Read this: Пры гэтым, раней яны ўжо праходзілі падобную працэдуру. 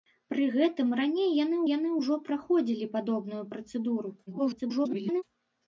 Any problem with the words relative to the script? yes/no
yes